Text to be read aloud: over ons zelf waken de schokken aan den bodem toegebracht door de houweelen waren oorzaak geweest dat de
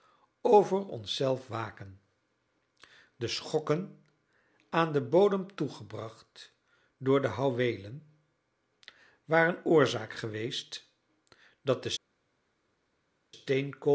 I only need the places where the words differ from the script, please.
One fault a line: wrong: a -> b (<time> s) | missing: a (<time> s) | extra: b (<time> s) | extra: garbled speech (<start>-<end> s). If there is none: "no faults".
no faults